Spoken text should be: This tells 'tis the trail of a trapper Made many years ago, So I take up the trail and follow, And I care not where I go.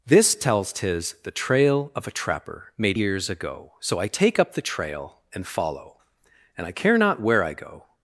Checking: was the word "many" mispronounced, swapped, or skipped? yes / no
yes